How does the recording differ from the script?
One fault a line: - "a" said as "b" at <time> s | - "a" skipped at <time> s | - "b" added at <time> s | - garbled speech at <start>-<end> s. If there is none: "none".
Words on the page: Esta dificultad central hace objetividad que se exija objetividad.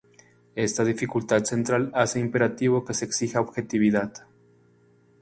- "objetividad" said as "imperativo" at 2.2 s